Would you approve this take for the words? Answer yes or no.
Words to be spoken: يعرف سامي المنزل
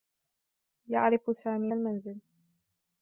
yes